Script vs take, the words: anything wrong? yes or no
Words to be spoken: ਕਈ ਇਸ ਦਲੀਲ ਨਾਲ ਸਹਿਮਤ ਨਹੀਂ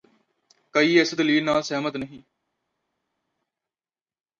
no